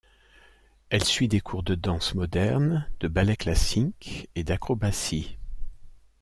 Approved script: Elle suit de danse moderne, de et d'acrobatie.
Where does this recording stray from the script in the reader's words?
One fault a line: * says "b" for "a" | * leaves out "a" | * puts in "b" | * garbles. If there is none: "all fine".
* puts in "des cours"
* puts in "ballet classique"